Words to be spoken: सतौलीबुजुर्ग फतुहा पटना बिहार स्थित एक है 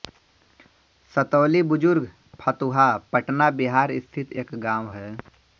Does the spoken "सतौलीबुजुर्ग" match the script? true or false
true